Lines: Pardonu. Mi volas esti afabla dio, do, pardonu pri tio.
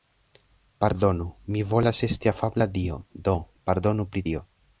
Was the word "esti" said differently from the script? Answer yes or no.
no